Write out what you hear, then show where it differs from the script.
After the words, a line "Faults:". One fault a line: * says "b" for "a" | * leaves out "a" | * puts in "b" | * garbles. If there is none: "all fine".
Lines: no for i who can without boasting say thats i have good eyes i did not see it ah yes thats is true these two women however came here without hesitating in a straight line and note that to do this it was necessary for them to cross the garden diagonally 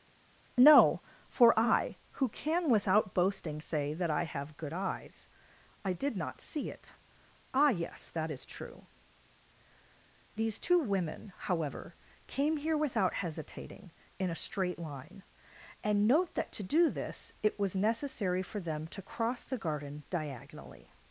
no for i who can without boasting say that i have good eyes i did not see it ah yes that is true these two women however came here without hesitating in a straight line and note that to do this it was necessary for them to cross the garden diagonally
Faults:
* says "that" for "thats"
* says "that" for "thats"